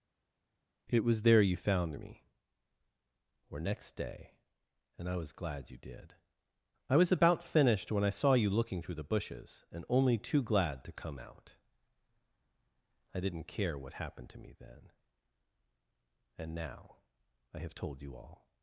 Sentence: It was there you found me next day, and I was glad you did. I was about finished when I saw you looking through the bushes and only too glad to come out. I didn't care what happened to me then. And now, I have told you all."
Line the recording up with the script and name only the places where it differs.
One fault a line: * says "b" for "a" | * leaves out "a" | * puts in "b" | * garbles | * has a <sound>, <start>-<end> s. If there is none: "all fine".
* puts in "or"